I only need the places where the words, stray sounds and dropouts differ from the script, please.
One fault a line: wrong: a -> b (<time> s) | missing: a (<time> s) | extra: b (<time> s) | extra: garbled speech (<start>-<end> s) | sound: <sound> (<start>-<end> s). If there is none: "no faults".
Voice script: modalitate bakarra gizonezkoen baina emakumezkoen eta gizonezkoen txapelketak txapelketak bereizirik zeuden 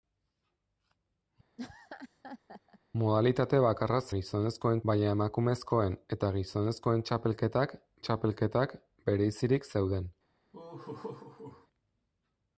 sound: laugh (1.6-2.8 s)
sound: laugh (10.5-11.7 s)